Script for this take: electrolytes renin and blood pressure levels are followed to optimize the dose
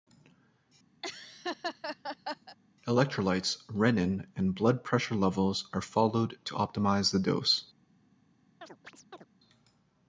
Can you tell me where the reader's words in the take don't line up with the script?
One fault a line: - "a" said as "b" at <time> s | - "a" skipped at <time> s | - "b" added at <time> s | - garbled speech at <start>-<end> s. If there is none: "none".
none